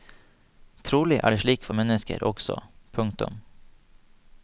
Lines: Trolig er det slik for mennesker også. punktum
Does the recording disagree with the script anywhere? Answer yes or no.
no